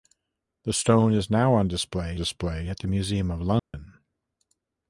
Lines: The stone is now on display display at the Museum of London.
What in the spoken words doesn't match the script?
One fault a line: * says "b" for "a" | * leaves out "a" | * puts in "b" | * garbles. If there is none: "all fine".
all fine